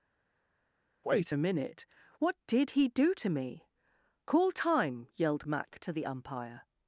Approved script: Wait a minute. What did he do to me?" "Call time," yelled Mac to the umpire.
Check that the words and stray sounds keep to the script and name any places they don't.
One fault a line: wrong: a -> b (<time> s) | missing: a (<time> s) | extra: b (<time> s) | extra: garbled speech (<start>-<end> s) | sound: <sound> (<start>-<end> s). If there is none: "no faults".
no faults